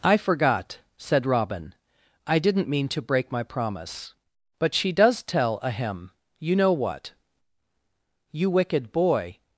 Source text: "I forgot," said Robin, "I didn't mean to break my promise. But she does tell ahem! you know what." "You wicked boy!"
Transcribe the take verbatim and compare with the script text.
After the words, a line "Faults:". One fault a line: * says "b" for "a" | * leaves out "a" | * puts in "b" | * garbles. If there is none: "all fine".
"I forgot," said Robin, "I didn't mean to break my promise. But she does tell ahem! you know what." "You wicked boy!"
Faults:
all fine